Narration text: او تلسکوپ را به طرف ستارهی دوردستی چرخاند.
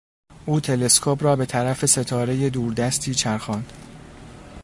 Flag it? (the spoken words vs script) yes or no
no